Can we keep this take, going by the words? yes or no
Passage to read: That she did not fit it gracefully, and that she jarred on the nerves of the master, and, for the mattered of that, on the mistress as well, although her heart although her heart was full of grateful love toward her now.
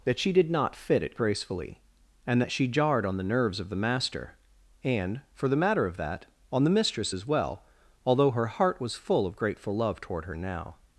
no